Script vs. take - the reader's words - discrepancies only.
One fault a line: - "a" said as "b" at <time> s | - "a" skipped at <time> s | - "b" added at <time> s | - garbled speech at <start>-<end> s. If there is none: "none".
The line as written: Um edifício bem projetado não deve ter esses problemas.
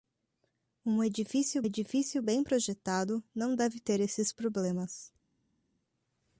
- "edifício" added at 1.6 s